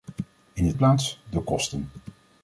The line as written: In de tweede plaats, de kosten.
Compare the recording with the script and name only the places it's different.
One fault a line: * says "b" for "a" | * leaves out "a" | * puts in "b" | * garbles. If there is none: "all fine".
* leaves out "tweede"